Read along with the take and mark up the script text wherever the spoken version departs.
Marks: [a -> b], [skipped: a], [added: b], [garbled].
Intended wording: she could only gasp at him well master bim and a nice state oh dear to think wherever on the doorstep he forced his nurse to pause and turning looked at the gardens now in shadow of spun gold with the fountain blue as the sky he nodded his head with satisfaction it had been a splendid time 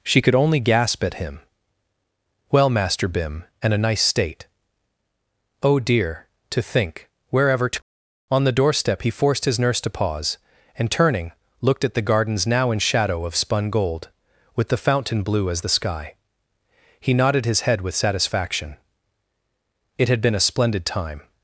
she could only gasp at him well master bim and a nice state oh dear to think wherever [added: to] on the doorstep he forced his nurse to pause and turning looked at the gardens now in shadow of spun gold with the fountain blue as the sky he nodded his head with satisfaction it had been a splendid time